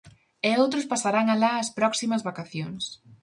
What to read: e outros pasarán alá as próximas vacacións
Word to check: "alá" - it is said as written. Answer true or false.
true